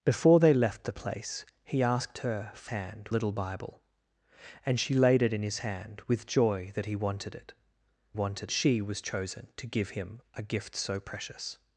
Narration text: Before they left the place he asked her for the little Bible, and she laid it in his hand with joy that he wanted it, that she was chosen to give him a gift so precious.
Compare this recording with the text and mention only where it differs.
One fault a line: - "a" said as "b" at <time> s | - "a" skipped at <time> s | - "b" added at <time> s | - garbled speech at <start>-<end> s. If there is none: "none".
- "the" said as "hand" at 2.7 s
- "that" said as "wanted" at 8.1 s